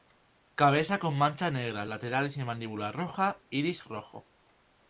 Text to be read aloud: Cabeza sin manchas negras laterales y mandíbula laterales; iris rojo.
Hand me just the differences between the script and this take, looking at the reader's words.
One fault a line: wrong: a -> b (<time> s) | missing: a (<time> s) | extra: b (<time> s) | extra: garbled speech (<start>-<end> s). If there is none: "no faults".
wrong: sin -> con (1.0 s)
wrong: laterales -> roja (2.9 s)